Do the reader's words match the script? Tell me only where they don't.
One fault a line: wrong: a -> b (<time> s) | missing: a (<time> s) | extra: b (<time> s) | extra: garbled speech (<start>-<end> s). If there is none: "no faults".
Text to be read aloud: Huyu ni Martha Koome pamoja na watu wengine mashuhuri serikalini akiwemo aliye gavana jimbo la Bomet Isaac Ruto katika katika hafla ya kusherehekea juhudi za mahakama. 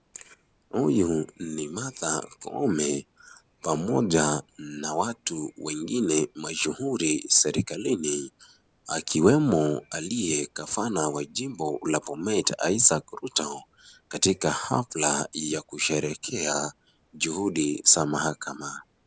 extra: wa (11.1 s)
missing: katika (14.5 s)